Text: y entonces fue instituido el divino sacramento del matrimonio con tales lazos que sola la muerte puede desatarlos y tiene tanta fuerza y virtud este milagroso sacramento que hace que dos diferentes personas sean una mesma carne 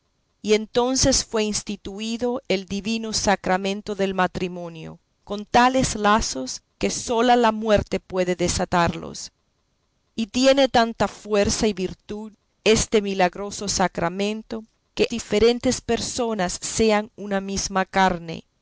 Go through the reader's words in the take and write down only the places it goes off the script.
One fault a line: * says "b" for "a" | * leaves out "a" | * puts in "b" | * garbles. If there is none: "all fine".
* leaves out "hace que dos"